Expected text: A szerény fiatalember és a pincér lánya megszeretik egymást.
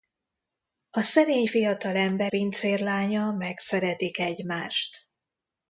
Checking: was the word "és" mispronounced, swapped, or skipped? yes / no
yes